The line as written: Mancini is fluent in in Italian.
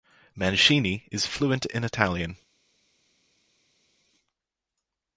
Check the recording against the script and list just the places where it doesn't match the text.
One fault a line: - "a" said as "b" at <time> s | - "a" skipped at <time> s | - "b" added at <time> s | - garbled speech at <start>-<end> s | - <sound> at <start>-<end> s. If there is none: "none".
- "in" skipped at 1.8 s